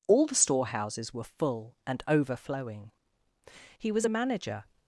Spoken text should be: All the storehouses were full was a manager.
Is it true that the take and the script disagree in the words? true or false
true